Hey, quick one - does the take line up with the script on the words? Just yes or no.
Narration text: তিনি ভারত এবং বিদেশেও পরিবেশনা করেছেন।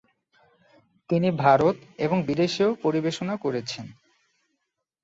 yes